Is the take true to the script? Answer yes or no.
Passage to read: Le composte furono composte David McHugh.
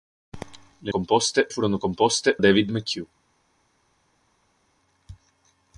yes